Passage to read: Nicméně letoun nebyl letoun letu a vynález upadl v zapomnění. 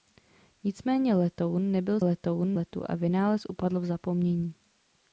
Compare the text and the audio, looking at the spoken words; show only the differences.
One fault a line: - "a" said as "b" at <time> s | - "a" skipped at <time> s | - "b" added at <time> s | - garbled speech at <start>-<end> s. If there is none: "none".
none